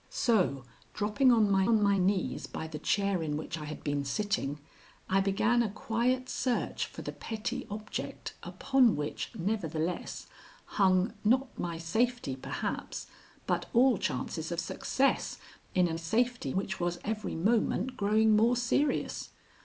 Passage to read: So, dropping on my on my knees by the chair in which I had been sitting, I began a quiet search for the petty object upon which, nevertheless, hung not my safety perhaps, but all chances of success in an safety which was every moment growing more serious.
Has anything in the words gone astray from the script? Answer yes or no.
no